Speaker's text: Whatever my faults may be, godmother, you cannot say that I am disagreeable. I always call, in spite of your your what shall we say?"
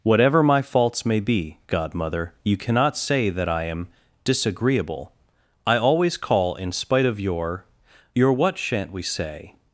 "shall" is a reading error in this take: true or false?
true